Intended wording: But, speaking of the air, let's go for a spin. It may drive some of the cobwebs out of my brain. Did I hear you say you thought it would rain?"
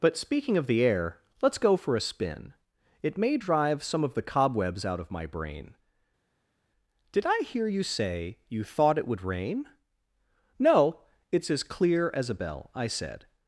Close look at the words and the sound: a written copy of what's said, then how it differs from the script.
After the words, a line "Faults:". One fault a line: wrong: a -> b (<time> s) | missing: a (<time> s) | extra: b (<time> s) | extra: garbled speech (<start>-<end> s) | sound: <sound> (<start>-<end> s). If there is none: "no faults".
But, speaking of the air, let's go for a spin. It may drive some of the cobwebs out of my brain. Did I hear you say you thought it would rain?" "No, it's as clear as a bell. I said
Faults:
extra: No it's as clear as a bell I said (10.6 s)